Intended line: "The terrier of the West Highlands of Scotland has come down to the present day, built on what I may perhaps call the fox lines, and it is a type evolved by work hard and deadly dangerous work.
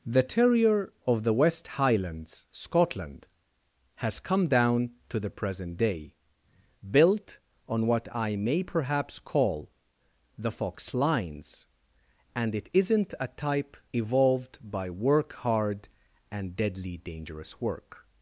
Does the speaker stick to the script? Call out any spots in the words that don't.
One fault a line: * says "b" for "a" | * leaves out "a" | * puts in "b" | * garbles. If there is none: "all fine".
* leaves out "of"
* says "isn't" for "is"